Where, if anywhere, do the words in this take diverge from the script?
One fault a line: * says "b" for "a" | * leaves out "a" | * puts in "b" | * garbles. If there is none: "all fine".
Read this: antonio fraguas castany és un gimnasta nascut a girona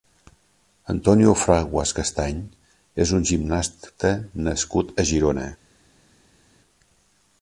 all fine